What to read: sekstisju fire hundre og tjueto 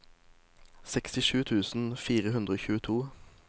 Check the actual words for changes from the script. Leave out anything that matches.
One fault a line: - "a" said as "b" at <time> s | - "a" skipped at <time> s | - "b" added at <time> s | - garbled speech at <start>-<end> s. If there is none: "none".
- "tusen" added at 1.4 s